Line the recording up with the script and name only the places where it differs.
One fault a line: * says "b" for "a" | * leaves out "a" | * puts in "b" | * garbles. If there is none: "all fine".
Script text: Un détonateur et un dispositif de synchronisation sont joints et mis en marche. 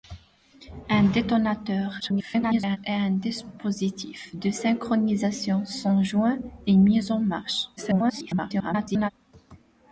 * garbles
* garbles